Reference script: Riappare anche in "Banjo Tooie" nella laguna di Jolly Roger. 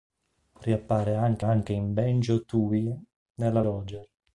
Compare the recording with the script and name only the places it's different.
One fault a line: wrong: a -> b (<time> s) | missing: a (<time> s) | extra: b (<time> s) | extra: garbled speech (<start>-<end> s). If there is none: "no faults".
extra: anche (1.4 s)
missing: laguna di Jolly (3.6 s)